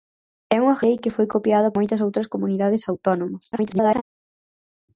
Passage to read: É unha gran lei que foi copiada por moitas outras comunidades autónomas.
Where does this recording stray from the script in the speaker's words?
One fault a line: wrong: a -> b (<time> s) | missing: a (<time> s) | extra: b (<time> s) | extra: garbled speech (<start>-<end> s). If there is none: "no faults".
missing: gran (0.8 s)
missing: por (1.7 s)
extra: garbled speech (3.5-4.0 s)